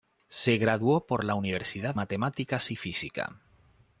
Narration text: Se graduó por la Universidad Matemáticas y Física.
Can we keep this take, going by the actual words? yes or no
yes